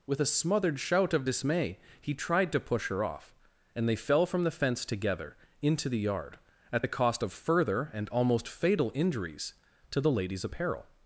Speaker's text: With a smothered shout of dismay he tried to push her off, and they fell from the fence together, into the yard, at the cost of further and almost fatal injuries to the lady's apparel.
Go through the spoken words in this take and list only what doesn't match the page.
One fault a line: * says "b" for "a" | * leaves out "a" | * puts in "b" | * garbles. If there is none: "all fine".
all fine